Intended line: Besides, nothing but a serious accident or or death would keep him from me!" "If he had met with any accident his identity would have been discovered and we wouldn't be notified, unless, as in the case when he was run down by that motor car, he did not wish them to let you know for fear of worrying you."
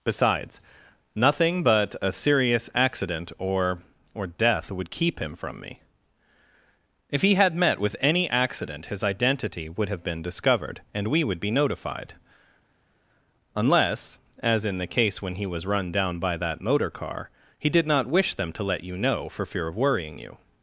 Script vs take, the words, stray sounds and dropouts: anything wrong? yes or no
yes